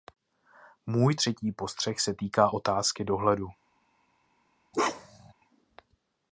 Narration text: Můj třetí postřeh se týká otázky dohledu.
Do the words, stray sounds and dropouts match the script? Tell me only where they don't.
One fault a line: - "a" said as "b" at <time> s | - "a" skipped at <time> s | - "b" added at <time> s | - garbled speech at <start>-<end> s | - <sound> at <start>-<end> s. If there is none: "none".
- bark at 4.7-5.3 s